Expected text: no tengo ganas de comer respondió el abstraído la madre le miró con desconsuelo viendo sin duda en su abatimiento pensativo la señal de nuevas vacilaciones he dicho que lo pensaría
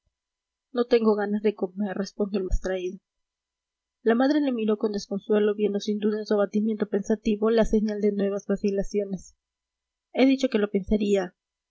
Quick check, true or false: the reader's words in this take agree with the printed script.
true